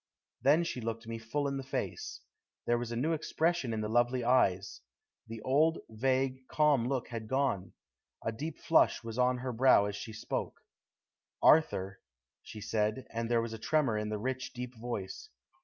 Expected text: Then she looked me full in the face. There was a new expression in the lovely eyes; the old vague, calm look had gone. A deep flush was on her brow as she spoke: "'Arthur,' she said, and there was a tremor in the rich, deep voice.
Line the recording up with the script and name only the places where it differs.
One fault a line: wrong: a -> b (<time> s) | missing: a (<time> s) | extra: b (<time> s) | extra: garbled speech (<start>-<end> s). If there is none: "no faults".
no faults